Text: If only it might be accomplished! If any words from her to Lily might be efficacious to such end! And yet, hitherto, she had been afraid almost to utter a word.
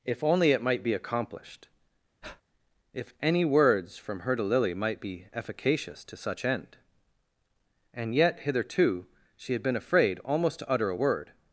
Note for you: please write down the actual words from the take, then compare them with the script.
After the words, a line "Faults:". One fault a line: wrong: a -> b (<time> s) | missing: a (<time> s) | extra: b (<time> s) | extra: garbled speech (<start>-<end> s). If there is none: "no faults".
If only it might be accomplished! If any words from her to Lily might be efficacious to such end! And yet, hitherto, she had been afraid almost to utter a word.
Faults:
no faults